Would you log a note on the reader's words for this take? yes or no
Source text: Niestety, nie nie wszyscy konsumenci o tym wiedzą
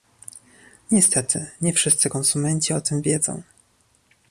yes